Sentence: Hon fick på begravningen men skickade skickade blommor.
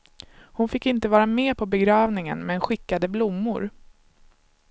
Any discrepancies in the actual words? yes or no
yes